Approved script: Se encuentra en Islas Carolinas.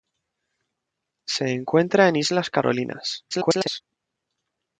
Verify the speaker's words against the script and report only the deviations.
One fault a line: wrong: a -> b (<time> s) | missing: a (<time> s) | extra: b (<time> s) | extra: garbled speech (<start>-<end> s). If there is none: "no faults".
extra: garbled speech (3.3-3.8 s)